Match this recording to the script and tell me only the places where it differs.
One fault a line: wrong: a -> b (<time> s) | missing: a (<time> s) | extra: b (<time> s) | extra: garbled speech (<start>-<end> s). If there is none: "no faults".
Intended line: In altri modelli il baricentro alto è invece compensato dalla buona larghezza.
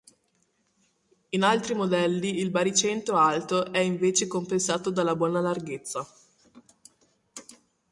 no faults